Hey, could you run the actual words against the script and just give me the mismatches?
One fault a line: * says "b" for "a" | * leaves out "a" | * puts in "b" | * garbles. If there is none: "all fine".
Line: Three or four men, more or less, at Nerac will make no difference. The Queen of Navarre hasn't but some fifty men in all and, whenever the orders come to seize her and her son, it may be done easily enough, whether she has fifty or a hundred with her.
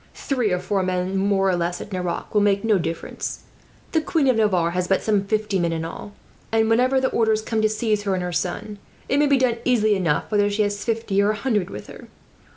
* says "has" for "hasn't"